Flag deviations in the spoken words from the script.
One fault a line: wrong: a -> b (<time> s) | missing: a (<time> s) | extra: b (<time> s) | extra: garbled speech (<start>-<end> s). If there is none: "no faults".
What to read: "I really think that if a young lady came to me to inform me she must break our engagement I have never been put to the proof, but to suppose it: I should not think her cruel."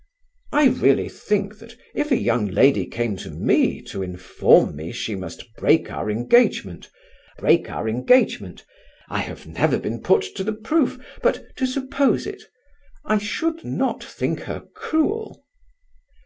extra: break our engagement (7.4 s)